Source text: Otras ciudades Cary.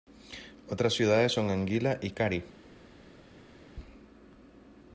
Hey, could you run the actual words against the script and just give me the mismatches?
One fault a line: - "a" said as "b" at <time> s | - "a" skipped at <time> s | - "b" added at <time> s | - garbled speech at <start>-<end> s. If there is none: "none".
- "son Anguilla y" added at 1.3 s